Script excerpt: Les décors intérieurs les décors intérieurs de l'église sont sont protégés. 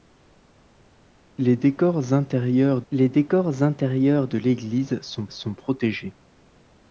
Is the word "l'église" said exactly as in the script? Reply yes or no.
yes